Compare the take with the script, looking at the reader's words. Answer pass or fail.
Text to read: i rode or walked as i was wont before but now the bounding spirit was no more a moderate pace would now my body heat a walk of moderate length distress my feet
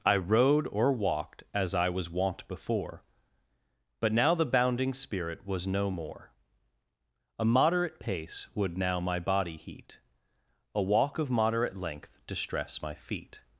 pass